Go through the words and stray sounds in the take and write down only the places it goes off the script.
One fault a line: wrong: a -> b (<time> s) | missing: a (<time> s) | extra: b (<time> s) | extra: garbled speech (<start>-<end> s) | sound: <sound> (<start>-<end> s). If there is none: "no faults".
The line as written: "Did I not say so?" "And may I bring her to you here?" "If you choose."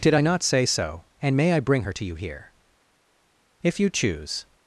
no faults